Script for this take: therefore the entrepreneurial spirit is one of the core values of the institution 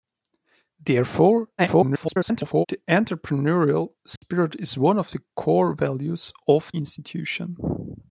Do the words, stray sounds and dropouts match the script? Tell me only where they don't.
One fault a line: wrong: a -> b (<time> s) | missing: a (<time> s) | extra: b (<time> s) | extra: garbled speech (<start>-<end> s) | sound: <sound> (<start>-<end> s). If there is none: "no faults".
extra: garbled speech (1.6-2.7 s)
sound: dropout (4.2-4.2 s)
missing: the (6.7 s)